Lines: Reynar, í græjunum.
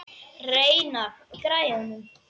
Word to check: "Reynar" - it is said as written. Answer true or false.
true